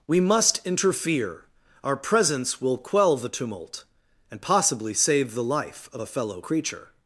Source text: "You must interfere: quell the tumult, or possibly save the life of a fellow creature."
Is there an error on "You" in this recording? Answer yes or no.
yes